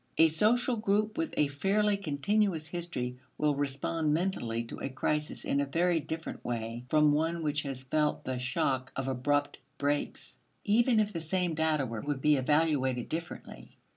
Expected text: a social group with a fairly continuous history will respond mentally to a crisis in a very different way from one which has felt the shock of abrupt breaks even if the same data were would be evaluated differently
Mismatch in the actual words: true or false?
false